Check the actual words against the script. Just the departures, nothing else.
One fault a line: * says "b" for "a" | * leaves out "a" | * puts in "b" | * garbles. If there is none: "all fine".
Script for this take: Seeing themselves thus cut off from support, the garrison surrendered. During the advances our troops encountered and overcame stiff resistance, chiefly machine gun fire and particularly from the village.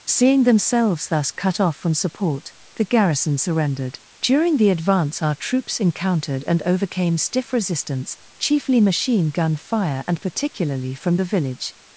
* says "advance" for "advances"